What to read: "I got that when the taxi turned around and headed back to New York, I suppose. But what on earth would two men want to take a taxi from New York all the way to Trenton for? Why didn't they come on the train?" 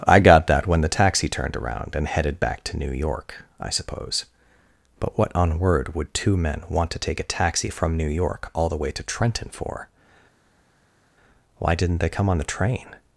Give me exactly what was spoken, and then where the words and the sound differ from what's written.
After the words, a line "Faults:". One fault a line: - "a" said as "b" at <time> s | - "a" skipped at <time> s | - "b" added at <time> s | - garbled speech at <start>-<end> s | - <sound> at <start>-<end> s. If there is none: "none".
"I got that when the taxi turned around and headed back to New York, I suppose. But what on word would two men want to take a taxi from New York all the way to Trenton for? Why didn't they come on the train?"
Faults:
- "earth" said as "word" at 5.6 s